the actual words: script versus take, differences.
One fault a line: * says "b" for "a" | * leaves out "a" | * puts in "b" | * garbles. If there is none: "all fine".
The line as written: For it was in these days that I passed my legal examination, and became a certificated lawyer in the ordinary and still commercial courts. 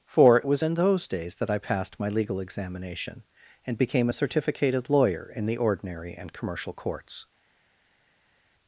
* says "those" for "these"
* leaves out "still"